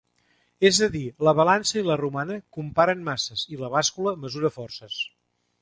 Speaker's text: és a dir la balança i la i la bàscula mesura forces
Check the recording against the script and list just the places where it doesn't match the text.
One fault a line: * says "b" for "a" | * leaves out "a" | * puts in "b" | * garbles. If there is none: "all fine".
* puts in "romana comparen masses"